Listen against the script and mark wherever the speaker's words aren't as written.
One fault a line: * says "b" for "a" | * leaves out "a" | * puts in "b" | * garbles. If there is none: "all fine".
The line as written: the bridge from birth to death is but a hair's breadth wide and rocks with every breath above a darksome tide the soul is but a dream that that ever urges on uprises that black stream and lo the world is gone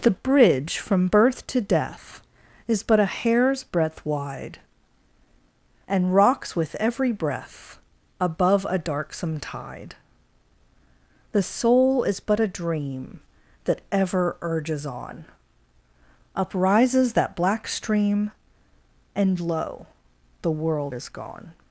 * leaves out "that"